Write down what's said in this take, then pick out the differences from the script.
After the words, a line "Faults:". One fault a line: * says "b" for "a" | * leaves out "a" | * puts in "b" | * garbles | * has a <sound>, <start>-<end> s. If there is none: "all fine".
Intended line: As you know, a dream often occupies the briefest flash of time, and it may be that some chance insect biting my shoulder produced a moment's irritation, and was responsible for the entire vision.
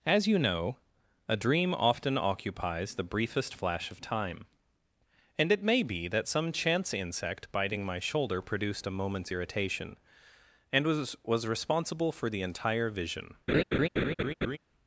As you know, a dream often occupies the briefest flash of time, and it may be that some chance insect biting my shoulder produced a moment's irritation, and was was responsible for the entire vision.
Faults:
* puts in "was"
* has a laugh, 13.5-14.6 s